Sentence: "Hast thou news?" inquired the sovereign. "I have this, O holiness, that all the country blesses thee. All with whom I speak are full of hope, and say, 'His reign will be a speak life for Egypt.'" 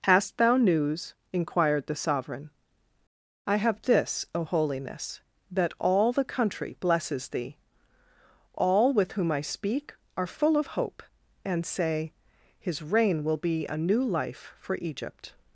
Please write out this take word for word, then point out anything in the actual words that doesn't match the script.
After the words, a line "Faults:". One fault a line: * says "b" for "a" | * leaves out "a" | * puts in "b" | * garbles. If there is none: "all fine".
"Hast thou news?" inquired the sovereign. "I have this, O holiness, that all the country blesses thee. All with whom I speak are full of hope, and say, 'His reign will be a new life for Egypt.'"
Faults:
* says "new" for "speak"